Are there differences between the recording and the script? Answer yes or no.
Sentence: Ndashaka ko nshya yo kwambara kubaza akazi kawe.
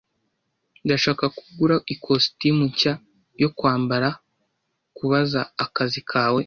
yes